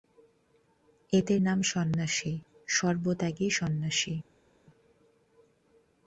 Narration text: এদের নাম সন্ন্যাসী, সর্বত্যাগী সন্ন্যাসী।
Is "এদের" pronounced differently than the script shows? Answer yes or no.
no